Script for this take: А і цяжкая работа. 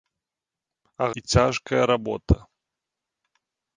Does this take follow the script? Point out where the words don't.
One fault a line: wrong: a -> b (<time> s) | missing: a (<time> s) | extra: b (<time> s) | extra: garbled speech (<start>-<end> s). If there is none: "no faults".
no faults